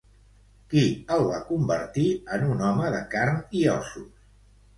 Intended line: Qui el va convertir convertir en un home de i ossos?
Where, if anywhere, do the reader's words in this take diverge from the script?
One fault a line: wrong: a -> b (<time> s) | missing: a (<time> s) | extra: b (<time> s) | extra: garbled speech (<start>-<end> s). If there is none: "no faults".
missing: convertir (2.1 s)
extra: carn (3.1 s)